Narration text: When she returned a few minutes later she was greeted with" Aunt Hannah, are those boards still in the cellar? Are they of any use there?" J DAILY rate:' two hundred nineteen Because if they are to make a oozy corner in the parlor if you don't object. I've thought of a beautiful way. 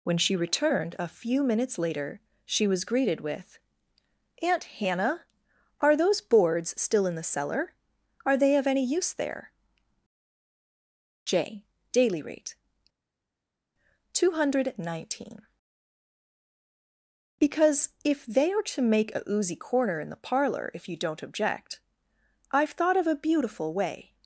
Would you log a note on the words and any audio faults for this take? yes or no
no